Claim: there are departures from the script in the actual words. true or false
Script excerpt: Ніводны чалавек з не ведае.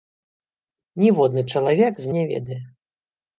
false